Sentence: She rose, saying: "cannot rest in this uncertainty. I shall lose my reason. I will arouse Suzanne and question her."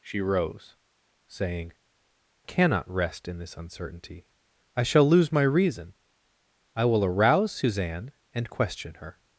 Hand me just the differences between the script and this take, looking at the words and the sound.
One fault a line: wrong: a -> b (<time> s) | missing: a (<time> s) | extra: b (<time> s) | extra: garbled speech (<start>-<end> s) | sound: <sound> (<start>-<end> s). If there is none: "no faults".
no faults